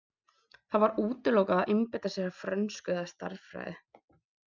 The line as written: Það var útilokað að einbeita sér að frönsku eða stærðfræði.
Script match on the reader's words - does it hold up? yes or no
yes